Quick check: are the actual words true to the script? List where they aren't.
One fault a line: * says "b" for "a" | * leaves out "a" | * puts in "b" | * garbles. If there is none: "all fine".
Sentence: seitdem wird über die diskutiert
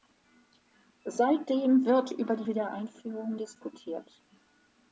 * puts in "wiedereinführung"